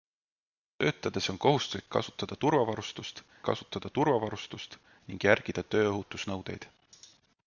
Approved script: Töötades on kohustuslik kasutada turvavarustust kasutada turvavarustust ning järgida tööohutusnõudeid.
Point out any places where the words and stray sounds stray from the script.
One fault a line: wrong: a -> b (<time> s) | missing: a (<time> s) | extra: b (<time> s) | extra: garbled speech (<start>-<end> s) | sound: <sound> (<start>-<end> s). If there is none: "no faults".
no faults